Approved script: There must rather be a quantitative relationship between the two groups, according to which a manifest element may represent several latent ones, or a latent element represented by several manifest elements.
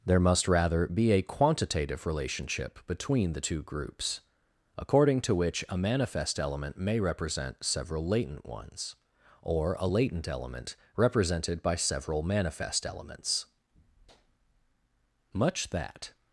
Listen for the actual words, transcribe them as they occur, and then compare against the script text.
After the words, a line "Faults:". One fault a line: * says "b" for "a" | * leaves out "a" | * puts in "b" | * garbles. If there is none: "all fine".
There must rather be a quantitative relationship between the two groups, according to which a manifest element may represent several latent ones, or a latent element represented by several manifest elements. Much that
Faults:
* puts in "Much that"